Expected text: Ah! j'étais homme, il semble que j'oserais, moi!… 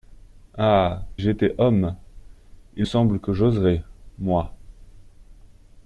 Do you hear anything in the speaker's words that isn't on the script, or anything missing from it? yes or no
no